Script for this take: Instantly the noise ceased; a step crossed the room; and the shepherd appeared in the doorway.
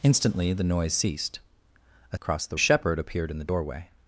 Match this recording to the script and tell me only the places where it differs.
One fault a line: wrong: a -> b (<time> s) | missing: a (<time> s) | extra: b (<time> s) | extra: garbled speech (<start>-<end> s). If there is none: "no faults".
missing: step (2.2 s)
missing: room and (2.6 s)